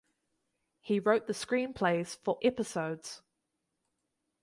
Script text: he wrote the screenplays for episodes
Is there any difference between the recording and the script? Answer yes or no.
no